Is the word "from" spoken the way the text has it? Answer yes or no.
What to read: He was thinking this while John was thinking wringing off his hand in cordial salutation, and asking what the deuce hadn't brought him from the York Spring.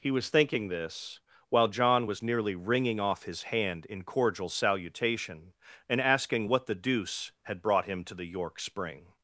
no